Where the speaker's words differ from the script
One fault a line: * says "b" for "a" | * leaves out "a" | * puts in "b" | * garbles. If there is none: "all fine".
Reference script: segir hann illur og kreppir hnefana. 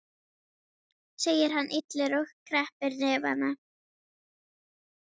all fine